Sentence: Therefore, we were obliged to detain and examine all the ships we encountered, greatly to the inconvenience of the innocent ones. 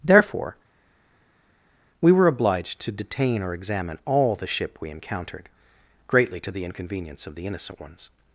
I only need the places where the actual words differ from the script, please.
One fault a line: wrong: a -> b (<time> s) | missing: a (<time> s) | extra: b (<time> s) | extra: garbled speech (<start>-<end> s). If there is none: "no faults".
wrong: and -> or (3.4 s)
wrong: ships -> ship (4.5 s)